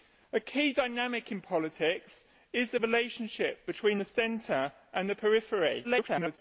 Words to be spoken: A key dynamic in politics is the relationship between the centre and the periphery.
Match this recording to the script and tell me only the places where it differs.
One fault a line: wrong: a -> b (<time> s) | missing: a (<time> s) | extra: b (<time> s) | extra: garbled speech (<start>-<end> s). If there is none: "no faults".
extra: garbled speech (5.8-6.4 s)